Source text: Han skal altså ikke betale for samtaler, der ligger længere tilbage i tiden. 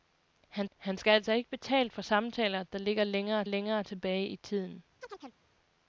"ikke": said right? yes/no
yes